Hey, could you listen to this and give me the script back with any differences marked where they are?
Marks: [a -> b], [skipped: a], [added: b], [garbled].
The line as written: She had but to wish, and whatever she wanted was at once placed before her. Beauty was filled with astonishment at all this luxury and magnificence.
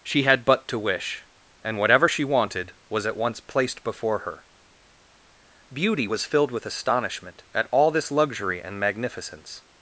She had but to wish, and whatever she wanted was at once placed before her. Beauty was filled with astonishment at all this luxury and magnificence.